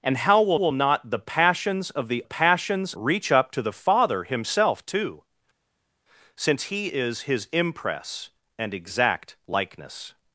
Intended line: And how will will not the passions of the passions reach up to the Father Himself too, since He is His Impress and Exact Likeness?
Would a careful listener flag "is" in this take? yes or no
no